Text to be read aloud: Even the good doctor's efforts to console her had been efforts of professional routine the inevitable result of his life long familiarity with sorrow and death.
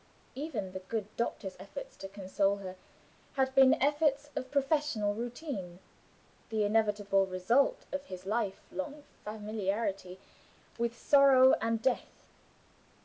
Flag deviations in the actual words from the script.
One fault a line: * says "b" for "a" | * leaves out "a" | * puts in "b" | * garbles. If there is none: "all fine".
all fine